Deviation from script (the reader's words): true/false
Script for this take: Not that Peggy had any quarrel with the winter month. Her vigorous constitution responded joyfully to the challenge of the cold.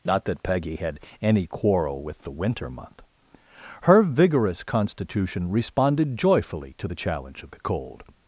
false